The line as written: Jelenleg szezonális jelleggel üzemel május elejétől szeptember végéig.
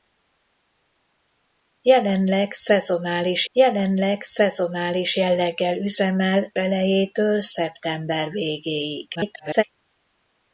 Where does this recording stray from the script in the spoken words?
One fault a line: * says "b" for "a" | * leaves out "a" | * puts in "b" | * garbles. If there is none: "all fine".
* puts in "jelenleg szezonális"
* leaves out "május"
* garbles